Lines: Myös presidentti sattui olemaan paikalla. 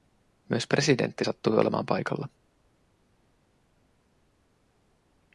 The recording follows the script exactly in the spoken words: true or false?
true